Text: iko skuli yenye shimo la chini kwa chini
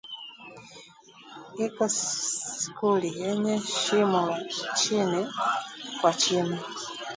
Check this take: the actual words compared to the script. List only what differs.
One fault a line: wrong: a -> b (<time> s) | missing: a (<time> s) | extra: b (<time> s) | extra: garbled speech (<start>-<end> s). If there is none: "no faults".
no faults